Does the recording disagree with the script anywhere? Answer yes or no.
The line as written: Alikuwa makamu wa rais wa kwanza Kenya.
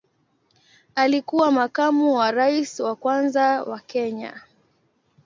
yes